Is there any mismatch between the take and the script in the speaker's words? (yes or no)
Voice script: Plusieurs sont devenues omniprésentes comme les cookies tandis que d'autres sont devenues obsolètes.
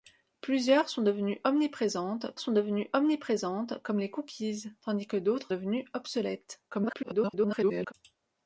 yes